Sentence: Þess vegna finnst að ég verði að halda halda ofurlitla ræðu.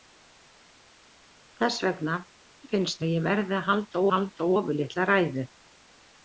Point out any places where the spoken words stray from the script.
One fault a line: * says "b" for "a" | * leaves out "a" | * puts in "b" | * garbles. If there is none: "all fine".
all fine